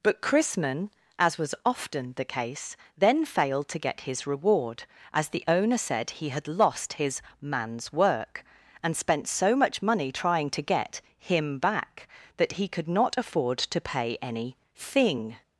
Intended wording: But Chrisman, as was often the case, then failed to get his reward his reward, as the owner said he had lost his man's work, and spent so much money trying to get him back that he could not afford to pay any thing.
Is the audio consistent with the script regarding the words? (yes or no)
no